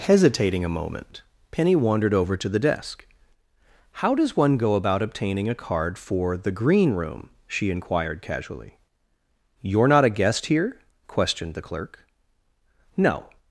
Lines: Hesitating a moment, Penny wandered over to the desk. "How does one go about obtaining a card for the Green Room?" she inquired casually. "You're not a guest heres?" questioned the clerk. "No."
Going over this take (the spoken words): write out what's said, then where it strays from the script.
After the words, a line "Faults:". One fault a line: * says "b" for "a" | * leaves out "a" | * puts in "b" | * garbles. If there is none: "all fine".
Hesitating a moment, Penny wandered over to the desk. "How does one go about obtaining a card for the Green Room?" she inquired casually. "You're not a guest here?" questioned the clerk. "No."
Faults:
* says "here" for "heres"